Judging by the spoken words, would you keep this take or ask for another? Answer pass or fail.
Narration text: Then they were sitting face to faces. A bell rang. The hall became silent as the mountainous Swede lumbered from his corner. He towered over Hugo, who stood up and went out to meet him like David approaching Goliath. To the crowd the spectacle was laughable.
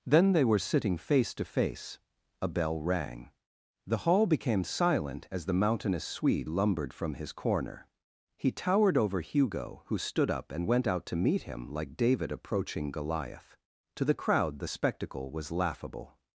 fail